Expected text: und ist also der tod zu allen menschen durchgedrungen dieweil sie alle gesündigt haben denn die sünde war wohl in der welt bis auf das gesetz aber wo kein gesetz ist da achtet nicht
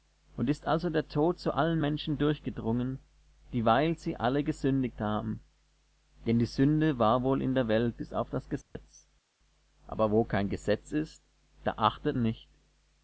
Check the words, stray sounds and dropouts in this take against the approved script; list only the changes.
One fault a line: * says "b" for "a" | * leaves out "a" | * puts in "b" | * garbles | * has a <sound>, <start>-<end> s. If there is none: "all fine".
* has a dropout, 8.6-8.8 s